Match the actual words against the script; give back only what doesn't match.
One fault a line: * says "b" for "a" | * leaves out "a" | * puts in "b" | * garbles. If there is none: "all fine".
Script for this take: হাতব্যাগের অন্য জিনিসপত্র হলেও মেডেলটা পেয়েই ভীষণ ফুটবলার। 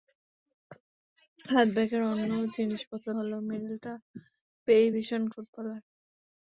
all fine